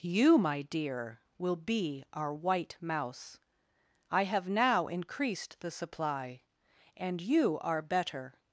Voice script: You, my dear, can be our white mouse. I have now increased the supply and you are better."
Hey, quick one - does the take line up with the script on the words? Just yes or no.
no